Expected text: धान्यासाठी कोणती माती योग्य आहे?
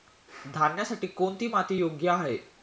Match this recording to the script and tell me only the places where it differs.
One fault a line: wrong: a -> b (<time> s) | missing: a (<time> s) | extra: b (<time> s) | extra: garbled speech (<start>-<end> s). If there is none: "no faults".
no faults